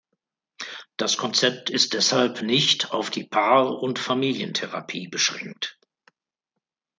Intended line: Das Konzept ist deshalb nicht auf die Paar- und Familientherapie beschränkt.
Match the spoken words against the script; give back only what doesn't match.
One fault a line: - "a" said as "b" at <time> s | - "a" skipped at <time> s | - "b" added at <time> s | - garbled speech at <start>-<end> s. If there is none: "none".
none